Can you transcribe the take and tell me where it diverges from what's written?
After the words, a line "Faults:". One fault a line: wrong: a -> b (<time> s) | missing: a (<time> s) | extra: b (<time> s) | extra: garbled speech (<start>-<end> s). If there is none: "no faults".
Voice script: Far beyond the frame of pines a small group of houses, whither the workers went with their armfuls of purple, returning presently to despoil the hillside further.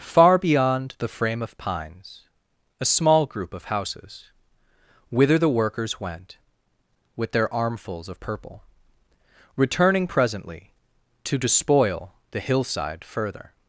Far beyond the frame of pines a small group of houses, whither the workers went with their armfuls of purple, returning presently to despoil the hillside further.
Faults:
no faults